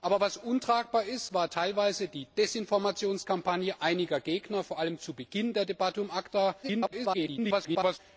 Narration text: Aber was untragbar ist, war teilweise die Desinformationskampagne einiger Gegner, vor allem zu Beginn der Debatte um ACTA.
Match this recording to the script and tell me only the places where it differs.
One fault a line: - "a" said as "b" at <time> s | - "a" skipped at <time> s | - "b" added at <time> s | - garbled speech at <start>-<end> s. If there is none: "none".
- garbled speech at 6.6-8.0 s